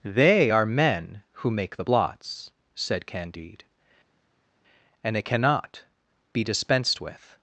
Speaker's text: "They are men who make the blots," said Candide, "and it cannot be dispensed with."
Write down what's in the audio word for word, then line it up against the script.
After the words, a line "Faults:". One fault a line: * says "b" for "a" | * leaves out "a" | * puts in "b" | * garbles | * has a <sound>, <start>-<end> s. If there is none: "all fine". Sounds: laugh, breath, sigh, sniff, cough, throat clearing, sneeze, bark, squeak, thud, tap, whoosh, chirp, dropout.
"They are men who make the blots," said Candide, "and it cannot be dispensed with."
Faults:
all fine